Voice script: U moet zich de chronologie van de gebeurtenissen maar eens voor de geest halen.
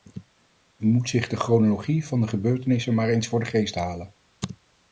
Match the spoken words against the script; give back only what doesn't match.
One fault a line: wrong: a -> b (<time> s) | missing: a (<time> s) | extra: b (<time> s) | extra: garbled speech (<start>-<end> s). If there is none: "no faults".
no faults